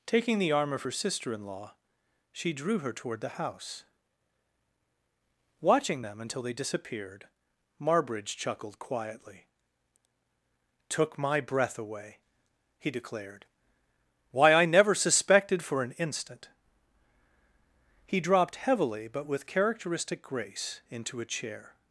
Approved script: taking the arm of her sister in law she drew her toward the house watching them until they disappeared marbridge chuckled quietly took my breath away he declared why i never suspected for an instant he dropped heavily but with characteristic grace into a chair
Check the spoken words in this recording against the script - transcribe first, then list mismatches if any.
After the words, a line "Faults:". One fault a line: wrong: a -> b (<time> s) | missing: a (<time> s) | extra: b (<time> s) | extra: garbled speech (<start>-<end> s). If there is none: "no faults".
taking the arm of her sister in law she drew her toward the house watching them until they disappeared marbridge chuckled quietly took my breath away he declared why i never suspected for an instant he dropped heavily but with characteristic grace into a chair
Faults:
no faults